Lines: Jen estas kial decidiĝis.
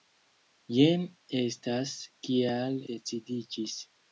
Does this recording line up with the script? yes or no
yes